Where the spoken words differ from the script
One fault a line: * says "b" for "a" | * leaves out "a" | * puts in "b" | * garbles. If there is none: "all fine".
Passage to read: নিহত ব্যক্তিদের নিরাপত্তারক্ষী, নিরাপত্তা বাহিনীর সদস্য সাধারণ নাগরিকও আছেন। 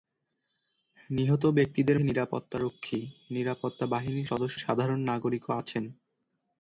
all fine